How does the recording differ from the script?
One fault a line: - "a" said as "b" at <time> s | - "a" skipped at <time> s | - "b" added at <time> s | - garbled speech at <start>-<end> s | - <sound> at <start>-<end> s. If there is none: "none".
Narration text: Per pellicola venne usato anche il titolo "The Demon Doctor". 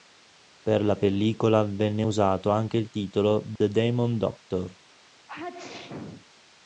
- "la" added at 0.8 s
- dropout at 3.6-3.6 s
- sneeze at 5.3-6.2 s